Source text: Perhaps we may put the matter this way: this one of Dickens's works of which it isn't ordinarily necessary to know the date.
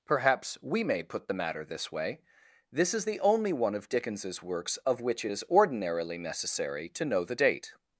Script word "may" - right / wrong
right